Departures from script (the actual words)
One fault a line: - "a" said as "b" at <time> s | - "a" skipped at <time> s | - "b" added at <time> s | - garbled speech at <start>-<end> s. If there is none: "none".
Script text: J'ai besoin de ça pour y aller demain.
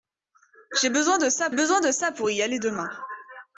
- "besoin de ça" added at 1.5 s